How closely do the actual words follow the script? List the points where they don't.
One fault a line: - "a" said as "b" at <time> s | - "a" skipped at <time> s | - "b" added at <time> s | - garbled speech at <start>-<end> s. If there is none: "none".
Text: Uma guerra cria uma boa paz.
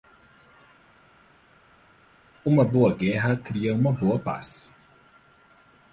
- "boa" added at 2.6 s